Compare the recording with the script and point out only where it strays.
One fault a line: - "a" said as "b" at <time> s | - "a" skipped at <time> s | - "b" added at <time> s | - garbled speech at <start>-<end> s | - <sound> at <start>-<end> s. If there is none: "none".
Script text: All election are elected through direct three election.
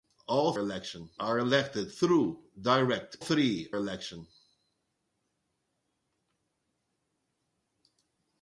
none